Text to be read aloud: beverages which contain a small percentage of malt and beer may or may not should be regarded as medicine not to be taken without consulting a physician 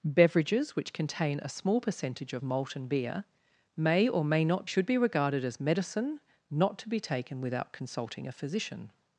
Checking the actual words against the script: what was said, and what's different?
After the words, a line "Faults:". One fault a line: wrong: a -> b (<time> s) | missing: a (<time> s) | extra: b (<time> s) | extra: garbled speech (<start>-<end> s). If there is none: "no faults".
beverages which contain a small percentage of malt and beer may or may not should be regarded as medicine not to be taken without consulting a physician
Faults:
no faults